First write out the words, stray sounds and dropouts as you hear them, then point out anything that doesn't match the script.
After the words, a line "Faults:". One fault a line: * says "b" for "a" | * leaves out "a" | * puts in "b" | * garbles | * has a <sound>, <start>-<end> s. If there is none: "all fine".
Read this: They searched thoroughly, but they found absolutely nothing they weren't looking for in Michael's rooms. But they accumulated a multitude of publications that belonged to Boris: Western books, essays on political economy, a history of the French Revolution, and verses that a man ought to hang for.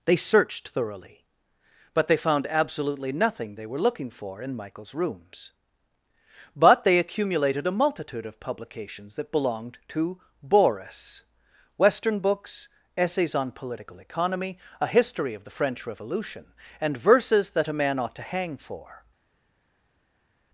They searched thoroughly, but they found absolutely nothing they were looking for in Michael's rooms. But they accumulated a multitude of publications that belonged to Boris: Western books, essays on political economy, a history of the French Revolution, and verses that a man ought to hang for.
Faults:
* says "were" for "weren't"